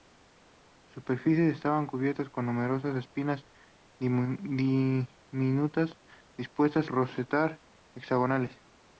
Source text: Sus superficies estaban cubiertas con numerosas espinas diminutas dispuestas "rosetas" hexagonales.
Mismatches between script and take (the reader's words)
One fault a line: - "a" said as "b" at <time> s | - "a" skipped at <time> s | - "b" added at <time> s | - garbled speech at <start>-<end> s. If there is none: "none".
none